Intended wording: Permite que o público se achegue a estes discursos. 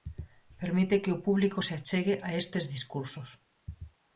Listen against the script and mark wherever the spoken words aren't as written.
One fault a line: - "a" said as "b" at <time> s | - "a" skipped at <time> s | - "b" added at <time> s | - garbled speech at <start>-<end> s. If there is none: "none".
none